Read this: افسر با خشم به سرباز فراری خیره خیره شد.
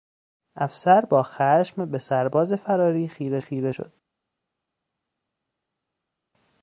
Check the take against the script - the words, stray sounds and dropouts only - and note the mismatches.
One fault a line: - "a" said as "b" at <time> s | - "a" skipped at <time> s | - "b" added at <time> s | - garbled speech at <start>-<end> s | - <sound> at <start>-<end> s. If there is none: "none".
none